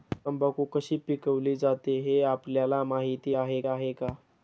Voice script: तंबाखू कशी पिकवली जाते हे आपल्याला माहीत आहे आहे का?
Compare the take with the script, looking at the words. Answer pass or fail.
pass